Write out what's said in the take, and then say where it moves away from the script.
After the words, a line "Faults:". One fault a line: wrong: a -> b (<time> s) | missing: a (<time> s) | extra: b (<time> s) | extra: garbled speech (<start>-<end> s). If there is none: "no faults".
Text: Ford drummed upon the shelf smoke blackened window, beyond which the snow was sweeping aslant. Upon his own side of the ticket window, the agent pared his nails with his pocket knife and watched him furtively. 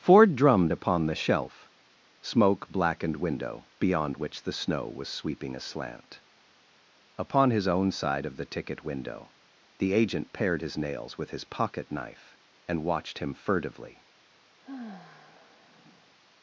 Ford drummed upon the shelf smoke blackened window, beyond which the snow was sweeping aslant. Upon his own side of the ticket window, the agent pared his nails with his pocket knife and watched him furtively.
Faults:
no faults